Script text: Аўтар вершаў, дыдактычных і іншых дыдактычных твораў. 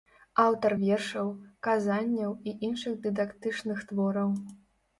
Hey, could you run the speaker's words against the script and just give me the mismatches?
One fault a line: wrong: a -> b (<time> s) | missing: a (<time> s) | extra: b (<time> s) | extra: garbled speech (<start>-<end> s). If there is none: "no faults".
wrong: дыдактычных -> казанняў (1.7 s)